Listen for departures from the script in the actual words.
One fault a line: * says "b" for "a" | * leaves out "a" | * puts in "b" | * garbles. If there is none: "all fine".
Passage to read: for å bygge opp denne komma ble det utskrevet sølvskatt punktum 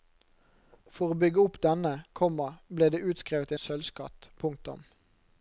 all fine